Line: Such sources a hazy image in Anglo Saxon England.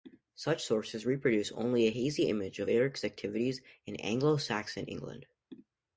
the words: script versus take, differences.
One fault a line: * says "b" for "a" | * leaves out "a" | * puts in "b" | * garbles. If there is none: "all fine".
* puts in "reproduce only"
* puts in "of Eric's activities"